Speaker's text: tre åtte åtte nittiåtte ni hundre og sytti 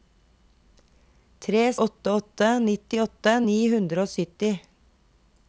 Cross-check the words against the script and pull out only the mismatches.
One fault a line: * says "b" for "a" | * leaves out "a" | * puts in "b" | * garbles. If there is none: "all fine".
all fine